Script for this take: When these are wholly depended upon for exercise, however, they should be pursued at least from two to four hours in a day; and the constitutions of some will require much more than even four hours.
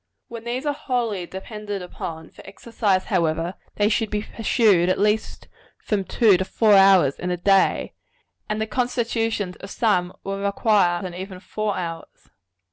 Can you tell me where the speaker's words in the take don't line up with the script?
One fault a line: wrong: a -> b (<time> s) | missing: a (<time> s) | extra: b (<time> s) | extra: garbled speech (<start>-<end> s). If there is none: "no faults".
missing: much more (11.0 s)